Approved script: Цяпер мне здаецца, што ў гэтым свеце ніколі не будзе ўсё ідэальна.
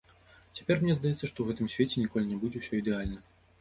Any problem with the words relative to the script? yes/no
no